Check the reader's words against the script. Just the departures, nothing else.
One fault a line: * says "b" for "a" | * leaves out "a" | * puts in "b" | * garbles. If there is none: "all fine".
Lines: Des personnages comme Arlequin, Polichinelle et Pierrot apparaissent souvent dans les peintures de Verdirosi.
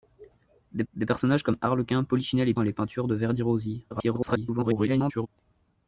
* puts in "des"
* leaves out "Pierrot apparaissent souvent"
* garbles